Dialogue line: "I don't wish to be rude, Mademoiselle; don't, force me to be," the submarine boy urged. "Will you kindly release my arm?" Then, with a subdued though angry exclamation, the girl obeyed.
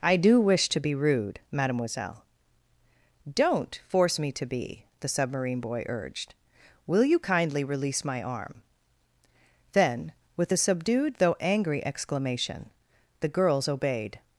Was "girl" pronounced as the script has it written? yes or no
no